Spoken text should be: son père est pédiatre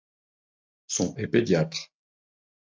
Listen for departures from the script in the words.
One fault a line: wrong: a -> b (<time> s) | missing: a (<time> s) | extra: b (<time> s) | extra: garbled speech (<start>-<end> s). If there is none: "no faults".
missing: père (1.1 s)